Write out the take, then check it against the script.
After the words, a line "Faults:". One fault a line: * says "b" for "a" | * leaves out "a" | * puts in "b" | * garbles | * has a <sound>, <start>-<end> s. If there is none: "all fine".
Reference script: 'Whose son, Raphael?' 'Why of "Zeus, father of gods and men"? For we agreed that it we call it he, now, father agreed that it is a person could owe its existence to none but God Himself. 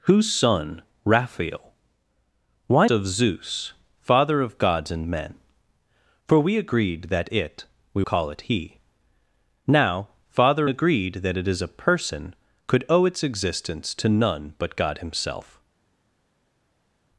'Whose son, Raphael?' 'Why of "Zeus, father of gods and men"? For we agreed that it we call it he, now, father agreed that it is a person could owe its existence to none but God Himself.
Faults:
all fine